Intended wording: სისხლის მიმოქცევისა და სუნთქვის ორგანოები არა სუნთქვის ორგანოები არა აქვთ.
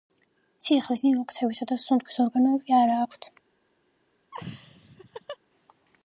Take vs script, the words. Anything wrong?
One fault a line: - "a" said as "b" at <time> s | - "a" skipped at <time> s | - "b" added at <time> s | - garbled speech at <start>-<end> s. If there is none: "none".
- "სუნთქვის ორგანოები არა" skipped at 3.0 s